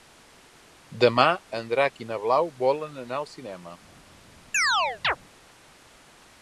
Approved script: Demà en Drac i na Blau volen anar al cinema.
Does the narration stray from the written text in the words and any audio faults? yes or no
yes